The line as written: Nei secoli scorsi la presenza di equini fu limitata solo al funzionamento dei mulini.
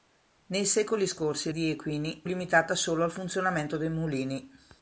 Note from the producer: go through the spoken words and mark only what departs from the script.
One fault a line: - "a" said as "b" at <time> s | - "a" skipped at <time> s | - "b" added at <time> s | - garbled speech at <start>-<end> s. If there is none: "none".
- "la presenza" skipped at 1.5 s
- "fu" skipped at 2.2 s